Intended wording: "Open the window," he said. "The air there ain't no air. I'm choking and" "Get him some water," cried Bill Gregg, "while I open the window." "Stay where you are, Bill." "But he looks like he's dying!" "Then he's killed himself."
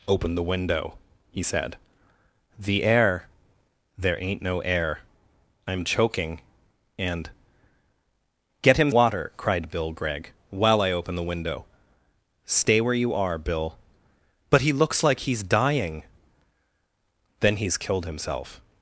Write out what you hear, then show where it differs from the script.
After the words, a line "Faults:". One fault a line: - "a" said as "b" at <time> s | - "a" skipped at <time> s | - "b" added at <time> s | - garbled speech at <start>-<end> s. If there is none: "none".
"Open the window," he said. "The air there ain't no air. I'm choking and" "Get him water," cried Bill Gregg, "while I open the window." "Stay where you are, Bill." "But he looks like he's dying!" "Then he's killed himself."
Faults:
- "some" skipped at 8.9 s